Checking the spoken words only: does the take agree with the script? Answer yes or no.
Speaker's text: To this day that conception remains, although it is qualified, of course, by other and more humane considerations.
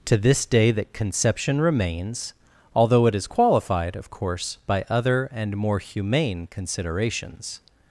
yes